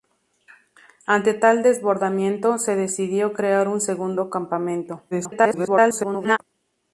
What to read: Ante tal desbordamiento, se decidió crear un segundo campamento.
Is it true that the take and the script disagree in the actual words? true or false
true